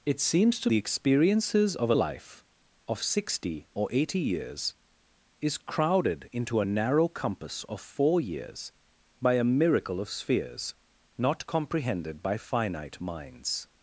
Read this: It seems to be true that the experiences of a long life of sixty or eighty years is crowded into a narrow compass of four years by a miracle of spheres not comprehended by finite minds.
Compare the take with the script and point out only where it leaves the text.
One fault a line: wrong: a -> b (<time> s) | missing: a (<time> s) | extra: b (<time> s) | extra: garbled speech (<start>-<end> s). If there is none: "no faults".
missing: be true that (0.7 s)
missing: long (1.9 s)